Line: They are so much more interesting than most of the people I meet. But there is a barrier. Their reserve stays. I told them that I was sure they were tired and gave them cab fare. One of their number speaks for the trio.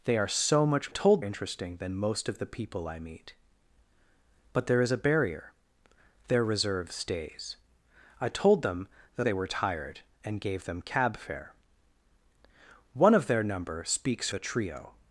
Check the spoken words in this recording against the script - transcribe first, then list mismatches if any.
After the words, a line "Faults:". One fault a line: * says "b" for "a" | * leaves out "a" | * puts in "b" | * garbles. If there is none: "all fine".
They are so much told interesting than most of the people I meet. But there is a barrier. Their reserve stays. I told them that they were tired and gave them cab fare. One of their number speaks the trio.
Faults:
* says "told" for "more"
* leaves out "I was sure"
* leaves out "for"